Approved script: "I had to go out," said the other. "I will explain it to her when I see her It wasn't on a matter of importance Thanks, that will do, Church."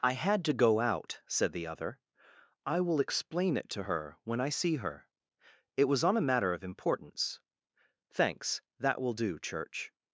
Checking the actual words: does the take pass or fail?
fail